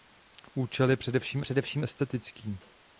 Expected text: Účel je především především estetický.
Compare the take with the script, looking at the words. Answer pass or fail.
pass